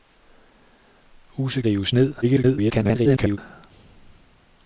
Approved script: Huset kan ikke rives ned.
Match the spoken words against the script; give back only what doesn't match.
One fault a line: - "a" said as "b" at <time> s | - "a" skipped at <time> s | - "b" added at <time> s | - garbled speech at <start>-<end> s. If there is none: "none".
- "kan ikke" skipped at 1.6 s
- garbled speech at 2.2-3.4 s